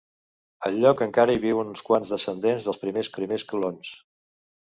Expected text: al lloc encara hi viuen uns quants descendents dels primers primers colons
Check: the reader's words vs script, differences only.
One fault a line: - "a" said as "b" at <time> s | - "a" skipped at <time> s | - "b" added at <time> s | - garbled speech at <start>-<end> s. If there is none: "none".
none